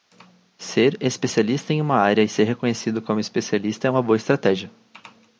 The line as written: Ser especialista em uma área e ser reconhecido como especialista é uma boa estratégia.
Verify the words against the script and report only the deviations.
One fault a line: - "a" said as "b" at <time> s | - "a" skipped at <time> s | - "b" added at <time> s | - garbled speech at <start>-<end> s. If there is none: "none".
none